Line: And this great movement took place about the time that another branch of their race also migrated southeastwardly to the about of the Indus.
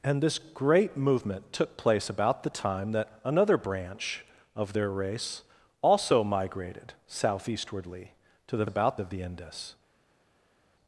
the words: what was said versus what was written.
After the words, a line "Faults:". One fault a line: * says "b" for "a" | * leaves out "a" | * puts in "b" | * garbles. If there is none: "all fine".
And this great movement took place about the time that another branch of their race also migrated southeastwardly to the about of the Indus.
Faults:
all fine